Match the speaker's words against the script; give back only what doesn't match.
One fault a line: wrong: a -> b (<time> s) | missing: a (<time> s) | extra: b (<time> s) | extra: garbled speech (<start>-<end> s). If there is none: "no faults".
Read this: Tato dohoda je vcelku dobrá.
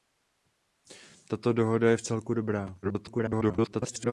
extra: garbled speech (2.8-4.1 s)